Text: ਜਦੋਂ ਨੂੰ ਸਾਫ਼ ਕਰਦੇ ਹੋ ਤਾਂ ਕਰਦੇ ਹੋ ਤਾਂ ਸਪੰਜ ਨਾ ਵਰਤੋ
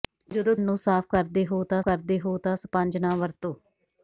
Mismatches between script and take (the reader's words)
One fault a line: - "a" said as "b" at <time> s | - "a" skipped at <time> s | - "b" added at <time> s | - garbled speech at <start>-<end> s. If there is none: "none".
none